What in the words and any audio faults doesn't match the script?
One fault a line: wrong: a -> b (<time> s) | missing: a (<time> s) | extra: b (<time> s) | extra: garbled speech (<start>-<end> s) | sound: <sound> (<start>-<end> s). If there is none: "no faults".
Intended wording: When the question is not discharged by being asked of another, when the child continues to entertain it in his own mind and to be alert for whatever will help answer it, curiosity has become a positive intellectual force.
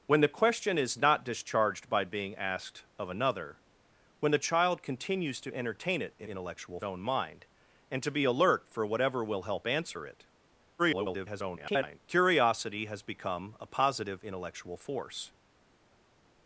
wrong: his -> intellectual (6.3 s)
extra: garbled speech (10.8-12.0 s)